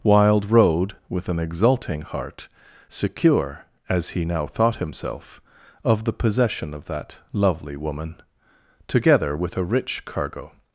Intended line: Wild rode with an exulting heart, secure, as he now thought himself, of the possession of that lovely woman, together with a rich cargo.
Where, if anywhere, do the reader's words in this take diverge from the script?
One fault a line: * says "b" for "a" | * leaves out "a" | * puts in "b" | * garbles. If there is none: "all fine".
all fine